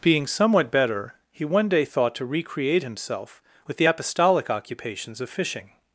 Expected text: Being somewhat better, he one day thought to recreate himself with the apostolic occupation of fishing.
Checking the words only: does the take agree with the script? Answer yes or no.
no